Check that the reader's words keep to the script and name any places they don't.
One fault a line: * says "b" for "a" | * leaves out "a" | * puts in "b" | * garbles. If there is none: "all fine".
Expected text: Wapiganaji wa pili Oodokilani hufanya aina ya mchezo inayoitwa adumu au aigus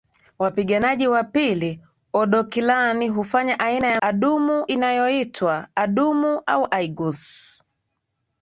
* says "adumu" for "mchezo"